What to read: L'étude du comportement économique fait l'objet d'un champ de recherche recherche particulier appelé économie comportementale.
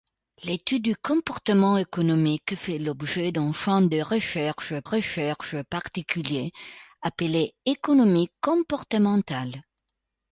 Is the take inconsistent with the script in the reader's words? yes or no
no